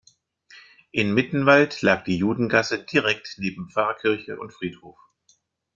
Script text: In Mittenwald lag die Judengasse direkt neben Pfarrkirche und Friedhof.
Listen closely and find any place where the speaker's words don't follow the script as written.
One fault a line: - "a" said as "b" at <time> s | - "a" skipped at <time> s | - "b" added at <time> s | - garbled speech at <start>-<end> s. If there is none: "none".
none